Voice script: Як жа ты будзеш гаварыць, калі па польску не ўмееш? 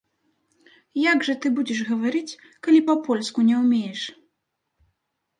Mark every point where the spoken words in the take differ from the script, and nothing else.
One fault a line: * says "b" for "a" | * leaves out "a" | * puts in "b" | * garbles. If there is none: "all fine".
all fine